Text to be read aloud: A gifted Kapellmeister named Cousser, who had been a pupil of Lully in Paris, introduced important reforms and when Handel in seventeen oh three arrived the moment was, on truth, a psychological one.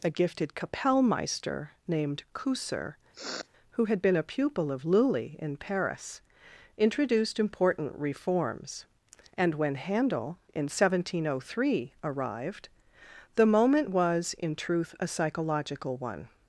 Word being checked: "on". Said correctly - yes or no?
no